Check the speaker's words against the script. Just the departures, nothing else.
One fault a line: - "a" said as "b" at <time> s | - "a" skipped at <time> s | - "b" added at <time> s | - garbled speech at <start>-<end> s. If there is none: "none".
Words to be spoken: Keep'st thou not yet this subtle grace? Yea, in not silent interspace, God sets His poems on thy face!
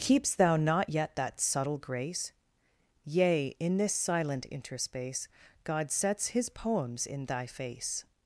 - "this" said as "that" at 1.2 s
- "not" said as "this" at 3.8 s
- "on" said as "in" at 7.1 s